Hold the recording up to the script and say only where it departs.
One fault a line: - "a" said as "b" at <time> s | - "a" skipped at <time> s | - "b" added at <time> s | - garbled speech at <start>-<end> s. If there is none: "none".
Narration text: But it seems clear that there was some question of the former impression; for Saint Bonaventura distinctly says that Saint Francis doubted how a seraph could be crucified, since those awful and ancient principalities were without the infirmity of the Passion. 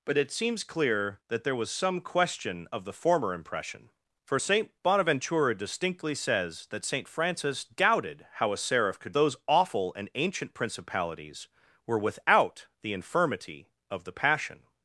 - "be crucified since" skipped at 9.1 s